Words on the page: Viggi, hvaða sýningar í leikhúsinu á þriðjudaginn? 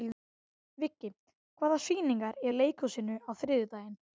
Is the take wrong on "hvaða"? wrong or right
right